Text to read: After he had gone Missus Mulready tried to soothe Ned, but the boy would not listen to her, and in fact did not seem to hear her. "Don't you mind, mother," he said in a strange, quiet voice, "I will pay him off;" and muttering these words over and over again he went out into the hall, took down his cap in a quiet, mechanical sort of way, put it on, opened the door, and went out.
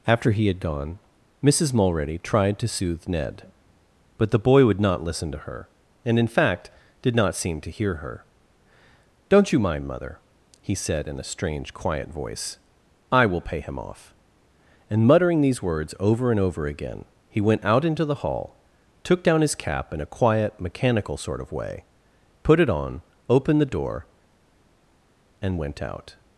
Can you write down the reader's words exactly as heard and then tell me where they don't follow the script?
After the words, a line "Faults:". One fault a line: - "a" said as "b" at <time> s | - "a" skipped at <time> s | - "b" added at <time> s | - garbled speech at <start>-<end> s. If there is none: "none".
After he had gone Missus Mulready tried to soothe Ned, but the boy would not listen to her, and in fact did not seem to hear her. "Don't you mind, mother," he said in a strange, quiet voice, "I will pay him off;" and muttering these words over and over again he went out into the hall, took down his cap in a quiet, mechanical sort of way, put it on, opened the door, and went out.
Faults:
none